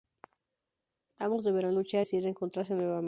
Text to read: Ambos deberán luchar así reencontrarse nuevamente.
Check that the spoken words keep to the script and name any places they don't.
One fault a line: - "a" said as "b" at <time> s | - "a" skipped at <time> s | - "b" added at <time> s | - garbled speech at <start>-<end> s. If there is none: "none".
none